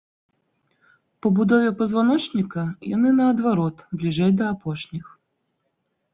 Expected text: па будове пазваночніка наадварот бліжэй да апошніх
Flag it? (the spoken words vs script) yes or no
yes